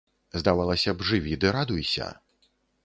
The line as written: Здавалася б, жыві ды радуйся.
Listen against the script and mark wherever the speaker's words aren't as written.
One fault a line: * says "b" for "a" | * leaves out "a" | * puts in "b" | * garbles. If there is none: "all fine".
all fine